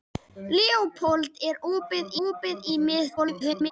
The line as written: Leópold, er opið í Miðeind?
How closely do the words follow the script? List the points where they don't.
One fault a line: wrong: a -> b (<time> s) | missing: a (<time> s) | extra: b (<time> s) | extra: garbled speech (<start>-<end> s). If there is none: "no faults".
extra: opið (2.3 s)
extra: garbled speech (3.2-3.7 s)